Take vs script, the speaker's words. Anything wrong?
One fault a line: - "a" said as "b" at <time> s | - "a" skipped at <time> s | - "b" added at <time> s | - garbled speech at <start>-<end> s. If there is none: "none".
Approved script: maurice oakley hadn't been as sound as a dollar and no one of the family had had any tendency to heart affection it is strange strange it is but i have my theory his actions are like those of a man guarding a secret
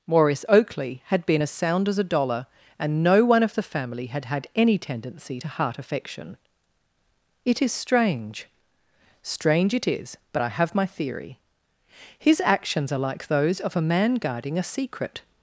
- "hadn't" said as "had" at 1.1 s